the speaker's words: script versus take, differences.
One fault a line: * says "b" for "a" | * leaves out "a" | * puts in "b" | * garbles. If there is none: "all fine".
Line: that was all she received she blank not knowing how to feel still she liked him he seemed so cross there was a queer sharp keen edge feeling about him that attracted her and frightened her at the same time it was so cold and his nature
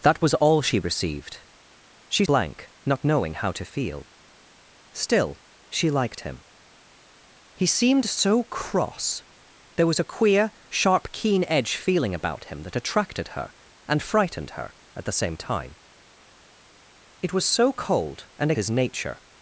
all fine